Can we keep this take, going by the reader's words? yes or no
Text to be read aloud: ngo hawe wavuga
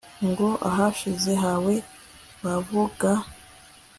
no